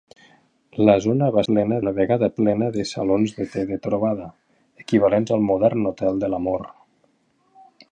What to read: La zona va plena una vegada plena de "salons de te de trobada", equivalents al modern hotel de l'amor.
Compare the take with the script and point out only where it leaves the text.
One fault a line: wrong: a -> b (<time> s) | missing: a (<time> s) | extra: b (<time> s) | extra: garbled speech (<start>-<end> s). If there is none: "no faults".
no faults